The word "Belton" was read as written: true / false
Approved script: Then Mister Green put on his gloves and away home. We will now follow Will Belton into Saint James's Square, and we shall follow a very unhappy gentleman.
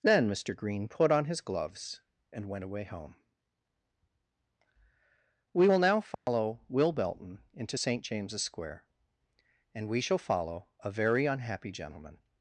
true